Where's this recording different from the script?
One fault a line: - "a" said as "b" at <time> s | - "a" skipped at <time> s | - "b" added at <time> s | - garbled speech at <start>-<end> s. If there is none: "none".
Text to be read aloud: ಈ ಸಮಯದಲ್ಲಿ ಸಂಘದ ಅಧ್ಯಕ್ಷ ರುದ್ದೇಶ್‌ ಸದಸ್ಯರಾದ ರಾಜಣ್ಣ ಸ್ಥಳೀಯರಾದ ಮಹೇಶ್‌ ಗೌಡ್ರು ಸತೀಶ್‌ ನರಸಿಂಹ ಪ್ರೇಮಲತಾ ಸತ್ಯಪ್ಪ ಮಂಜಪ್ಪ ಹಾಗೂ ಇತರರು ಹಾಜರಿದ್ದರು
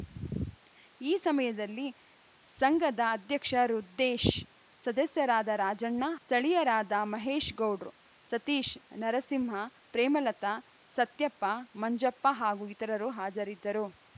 none